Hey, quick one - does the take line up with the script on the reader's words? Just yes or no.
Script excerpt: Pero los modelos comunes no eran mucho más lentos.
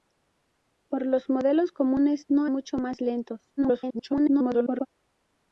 no